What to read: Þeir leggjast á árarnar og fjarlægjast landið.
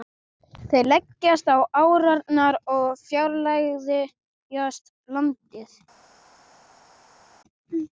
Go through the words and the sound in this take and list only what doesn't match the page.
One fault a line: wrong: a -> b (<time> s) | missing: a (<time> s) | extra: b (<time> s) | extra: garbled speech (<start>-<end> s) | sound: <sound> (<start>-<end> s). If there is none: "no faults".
no faults